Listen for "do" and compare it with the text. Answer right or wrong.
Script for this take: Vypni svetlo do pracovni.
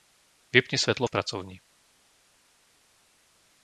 wrong